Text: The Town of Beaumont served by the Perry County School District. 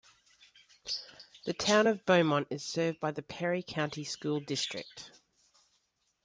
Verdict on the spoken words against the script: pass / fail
fail